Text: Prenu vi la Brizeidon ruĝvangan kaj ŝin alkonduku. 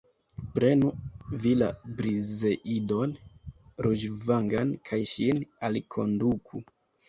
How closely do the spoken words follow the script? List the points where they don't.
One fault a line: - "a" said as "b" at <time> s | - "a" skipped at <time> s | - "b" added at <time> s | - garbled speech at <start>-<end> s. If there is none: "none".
none